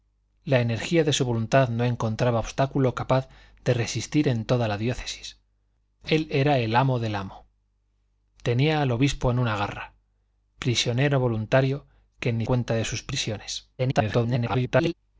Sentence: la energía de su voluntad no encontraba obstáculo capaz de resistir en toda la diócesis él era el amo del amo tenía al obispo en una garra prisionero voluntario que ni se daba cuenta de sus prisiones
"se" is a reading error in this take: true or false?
true